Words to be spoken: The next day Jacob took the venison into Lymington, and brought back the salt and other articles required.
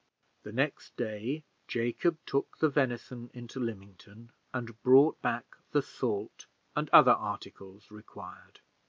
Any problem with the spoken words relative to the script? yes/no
no